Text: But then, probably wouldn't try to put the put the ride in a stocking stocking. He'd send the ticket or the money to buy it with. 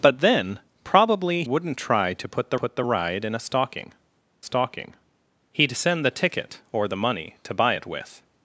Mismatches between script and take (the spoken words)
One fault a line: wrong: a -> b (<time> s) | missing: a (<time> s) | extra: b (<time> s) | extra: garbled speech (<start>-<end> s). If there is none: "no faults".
no faults